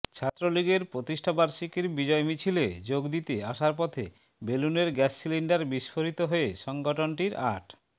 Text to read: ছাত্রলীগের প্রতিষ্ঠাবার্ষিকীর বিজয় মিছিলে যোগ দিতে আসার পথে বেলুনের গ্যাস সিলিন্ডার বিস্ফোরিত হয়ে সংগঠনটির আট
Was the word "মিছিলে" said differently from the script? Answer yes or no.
no